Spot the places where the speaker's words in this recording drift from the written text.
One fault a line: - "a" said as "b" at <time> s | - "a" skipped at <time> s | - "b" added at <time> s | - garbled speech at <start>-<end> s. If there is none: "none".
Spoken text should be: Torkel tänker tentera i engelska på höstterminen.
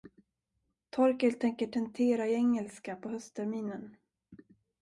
none